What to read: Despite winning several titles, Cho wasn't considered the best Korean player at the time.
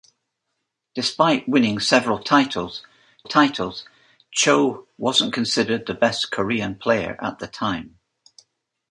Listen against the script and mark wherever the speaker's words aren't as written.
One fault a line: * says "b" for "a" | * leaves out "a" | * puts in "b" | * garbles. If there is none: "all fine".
* puts in "titles"